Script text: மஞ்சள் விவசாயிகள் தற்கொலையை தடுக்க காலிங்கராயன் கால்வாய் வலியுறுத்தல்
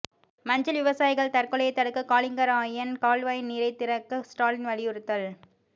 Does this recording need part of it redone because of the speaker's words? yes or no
yes